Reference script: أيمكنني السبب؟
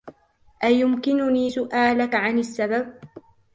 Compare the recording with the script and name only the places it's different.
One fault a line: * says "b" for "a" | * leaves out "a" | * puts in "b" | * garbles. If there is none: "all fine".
* puts in "سؤالك عن"